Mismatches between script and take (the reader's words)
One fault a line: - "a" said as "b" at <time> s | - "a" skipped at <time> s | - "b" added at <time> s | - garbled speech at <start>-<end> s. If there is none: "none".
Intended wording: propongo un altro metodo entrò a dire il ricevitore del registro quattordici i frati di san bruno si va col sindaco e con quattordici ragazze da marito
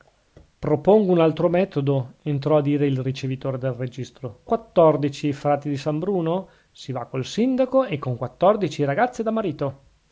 none